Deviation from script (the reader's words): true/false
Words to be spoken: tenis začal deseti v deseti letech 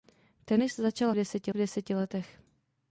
false